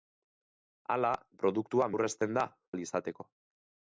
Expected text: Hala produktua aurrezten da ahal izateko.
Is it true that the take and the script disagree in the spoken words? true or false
false